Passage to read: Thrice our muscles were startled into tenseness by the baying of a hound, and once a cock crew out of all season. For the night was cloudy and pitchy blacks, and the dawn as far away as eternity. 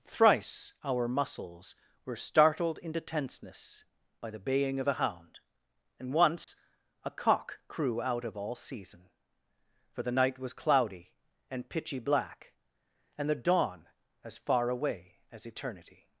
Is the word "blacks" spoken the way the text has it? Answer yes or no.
no